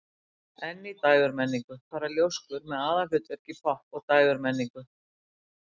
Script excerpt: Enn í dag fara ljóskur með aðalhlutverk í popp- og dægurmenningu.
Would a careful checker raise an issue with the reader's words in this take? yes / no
yes